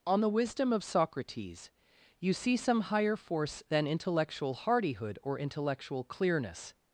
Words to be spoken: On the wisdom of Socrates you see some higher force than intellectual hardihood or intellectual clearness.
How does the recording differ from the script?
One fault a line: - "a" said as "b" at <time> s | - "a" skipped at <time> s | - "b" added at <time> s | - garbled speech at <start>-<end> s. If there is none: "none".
none